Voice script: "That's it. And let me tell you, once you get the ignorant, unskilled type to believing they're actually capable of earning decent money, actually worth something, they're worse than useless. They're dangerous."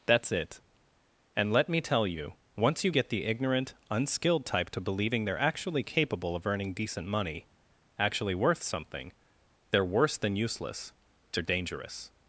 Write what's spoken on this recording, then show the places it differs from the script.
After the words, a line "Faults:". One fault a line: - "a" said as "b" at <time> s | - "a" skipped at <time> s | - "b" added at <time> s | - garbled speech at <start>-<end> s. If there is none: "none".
"That's it. And let me tell you, once you get the ignorant, unskilled type to believing they're actually capable of earning decent money, actually worth something, they're worse than useless. They're dangerous."
Faults:
none